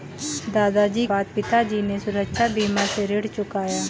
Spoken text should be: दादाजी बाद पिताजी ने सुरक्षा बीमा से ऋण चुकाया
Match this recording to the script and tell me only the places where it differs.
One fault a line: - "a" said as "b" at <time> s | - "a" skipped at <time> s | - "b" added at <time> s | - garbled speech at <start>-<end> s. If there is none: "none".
none